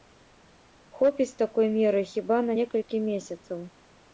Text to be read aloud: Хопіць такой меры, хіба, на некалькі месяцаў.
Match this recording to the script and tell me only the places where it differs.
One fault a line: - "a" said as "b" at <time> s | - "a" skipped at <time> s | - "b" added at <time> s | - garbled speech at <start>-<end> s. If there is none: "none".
none